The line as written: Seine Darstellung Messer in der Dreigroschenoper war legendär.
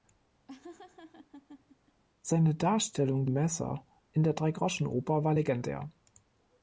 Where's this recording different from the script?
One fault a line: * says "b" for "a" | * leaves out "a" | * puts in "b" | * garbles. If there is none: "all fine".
all fine